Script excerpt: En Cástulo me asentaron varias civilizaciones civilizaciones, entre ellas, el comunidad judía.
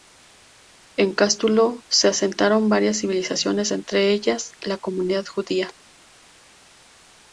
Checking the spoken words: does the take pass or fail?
fail